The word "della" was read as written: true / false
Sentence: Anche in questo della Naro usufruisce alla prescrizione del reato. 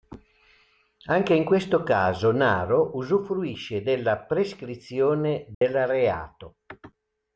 false